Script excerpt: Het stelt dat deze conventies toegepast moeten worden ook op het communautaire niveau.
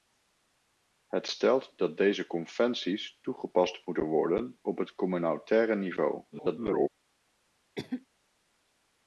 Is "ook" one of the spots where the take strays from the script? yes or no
yes